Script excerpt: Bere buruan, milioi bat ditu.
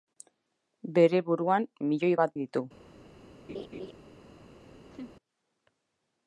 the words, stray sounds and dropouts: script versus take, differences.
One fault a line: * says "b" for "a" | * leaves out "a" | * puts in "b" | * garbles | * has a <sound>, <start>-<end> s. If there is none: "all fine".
* has a laugh, 3.5-3.9 s
* has a laugh, 4.9-5.1 s